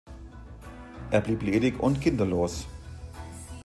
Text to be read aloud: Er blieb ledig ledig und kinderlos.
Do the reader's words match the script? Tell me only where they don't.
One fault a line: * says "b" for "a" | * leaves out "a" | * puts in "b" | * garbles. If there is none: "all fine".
* leaves out "ledig"